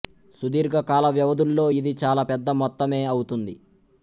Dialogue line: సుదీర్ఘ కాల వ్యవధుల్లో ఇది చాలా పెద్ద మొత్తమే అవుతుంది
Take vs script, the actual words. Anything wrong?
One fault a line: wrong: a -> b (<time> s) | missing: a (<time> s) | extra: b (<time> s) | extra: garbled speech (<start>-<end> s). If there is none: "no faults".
no faults